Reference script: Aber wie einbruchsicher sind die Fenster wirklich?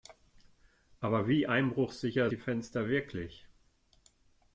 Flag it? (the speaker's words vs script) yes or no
yes